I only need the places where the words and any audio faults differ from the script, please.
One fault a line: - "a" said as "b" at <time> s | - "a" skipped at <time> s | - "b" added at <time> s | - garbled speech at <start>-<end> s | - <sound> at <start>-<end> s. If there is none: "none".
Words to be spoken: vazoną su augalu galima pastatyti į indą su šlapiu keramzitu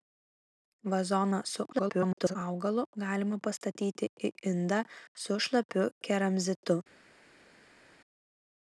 - garbled speech at 1.7-2.4 s